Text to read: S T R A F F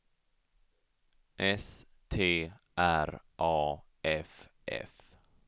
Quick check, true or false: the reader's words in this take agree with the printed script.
true